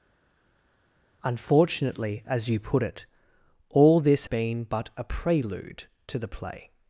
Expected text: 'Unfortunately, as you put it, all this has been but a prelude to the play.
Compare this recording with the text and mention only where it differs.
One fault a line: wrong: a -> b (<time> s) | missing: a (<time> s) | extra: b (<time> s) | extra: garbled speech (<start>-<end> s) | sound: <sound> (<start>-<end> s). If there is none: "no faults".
missing: has (4.3 s)